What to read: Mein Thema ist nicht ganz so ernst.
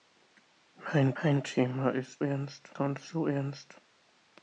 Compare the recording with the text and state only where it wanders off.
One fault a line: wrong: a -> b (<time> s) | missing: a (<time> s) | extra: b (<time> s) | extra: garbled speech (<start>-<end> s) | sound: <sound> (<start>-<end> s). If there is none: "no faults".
extra: mein (1.2 s)
wrong: nicht -> ernst (2.2 s)